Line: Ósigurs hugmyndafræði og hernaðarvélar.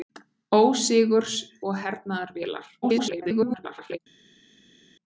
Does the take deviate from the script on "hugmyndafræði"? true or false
true